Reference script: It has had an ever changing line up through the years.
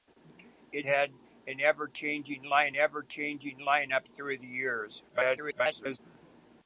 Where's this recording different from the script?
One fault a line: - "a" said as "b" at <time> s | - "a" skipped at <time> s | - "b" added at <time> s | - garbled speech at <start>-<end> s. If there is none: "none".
- "has" skipped at 0.9 s
- "ever changing line" added at 2.8 s
- garbled speech at 5.1-6.0 s